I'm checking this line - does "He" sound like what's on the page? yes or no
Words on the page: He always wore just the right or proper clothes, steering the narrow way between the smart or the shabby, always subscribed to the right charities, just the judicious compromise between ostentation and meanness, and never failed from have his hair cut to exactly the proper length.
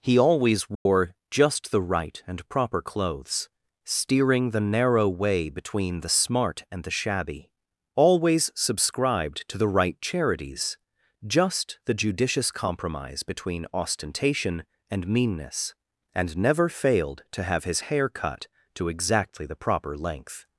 yes